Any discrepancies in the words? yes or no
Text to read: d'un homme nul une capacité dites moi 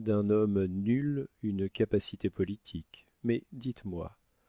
yes